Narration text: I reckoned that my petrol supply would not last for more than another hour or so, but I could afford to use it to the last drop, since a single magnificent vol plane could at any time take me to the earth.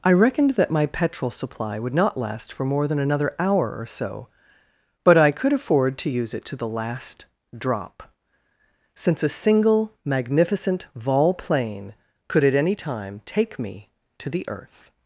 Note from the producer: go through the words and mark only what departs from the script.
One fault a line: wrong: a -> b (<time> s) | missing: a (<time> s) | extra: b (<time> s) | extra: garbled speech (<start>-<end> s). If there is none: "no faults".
no faults